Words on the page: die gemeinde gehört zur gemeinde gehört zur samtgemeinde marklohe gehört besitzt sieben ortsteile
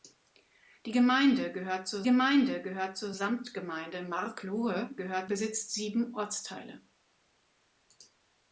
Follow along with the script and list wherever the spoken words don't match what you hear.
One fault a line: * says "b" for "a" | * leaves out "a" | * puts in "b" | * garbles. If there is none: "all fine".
all fine